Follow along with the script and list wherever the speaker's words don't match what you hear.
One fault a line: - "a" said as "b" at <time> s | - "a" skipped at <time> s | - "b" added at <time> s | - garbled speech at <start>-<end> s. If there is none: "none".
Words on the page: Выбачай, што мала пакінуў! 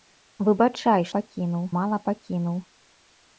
- "што" said as "пакінуў" at 1.2 s